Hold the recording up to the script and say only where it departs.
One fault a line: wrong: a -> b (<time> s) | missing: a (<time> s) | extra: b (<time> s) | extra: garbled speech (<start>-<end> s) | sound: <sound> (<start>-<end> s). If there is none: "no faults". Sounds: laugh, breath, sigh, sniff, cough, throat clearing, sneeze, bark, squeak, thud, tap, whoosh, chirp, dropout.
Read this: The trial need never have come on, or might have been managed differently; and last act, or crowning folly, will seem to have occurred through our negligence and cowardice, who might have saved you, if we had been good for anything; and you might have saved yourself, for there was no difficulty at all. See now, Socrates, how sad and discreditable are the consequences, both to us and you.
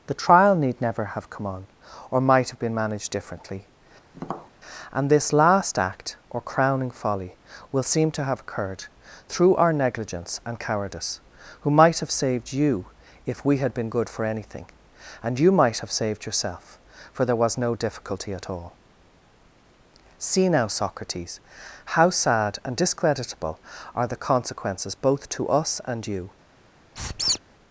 sound: tap (4.1-4.5 s)
extra: this (5.1 s)
sound: squeak (27.0-27.4 s)